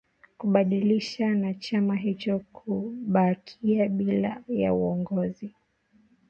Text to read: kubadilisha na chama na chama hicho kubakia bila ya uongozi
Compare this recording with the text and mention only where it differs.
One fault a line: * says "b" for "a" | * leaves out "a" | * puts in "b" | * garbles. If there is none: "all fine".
* leaves out "na chama"